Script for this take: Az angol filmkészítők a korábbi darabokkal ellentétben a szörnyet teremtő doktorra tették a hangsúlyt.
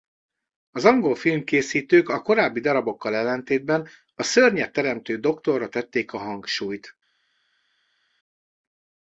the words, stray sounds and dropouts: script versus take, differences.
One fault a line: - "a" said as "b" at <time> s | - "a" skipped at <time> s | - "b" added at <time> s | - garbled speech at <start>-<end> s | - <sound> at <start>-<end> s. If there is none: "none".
none